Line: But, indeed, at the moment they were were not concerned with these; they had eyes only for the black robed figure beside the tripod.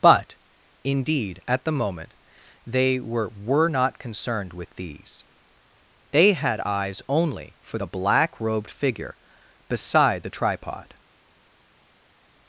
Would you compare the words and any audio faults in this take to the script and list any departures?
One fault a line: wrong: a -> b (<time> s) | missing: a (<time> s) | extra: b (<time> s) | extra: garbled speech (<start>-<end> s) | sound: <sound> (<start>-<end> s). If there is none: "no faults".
no faults